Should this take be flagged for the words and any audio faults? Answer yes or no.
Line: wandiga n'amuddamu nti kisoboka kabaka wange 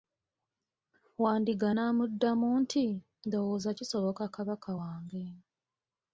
yes